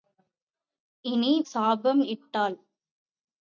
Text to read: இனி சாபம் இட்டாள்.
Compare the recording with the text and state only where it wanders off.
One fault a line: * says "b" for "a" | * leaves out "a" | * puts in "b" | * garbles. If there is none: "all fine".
all fine